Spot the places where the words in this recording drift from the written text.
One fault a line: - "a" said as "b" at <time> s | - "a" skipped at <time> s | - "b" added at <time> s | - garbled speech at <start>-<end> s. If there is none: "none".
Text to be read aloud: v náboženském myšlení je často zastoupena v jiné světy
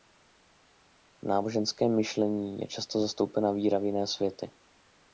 - "víra" added at 3.5 s